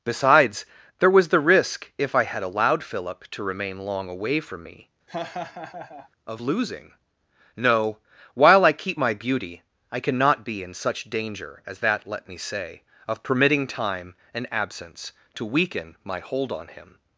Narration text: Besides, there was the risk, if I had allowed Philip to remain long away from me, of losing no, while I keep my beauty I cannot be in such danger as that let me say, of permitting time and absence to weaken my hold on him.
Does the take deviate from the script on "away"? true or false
false